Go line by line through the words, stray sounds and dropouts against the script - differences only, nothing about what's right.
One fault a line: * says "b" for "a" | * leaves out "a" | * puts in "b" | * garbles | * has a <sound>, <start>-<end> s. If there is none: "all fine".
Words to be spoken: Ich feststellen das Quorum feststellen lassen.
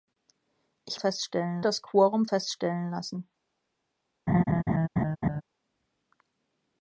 * has a laugh, 4.3-5.4 s